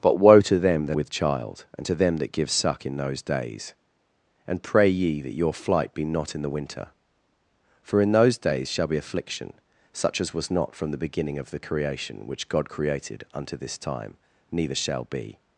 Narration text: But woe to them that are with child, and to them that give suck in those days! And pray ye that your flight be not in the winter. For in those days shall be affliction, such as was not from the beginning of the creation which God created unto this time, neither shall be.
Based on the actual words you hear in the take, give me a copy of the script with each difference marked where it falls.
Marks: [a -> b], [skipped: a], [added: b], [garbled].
But woe to them that [skipped: are] with child, and to them that give suck in those days! And pray ye that your flight be not in the winter. For in those days shall be affliction, such as was not from the beginning of the creation which God created unto this time, neither shall be.